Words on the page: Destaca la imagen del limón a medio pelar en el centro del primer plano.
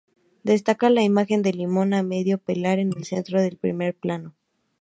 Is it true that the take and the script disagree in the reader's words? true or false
false